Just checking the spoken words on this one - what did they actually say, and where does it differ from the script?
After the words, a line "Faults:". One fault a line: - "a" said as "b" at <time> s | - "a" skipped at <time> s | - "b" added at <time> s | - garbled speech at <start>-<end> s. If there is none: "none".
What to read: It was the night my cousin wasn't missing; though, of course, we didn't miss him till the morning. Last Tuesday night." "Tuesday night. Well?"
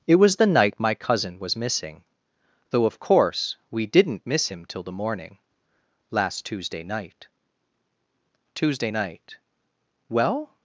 It was the night my cousin was missing; though, of course, we didn't miss him till the morning. Last Tuesday night." "Tuesday night. Well?"
Faults:
- "wasn't" said as "was" at 1.4 s